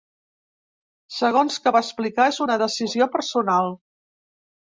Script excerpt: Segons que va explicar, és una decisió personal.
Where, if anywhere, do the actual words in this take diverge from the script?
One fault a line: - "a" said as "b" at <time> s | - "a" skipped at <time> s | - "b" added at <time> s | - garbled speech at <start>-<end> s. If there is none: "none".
none